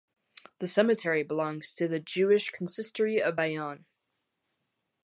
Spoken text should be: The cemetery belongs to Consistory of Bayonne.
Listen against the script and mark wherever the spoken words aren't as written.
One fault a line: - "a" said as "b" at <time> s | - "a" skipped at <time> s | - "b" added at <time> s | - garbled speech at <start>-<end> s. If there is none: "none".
- "the Jewish" added at 1.9 s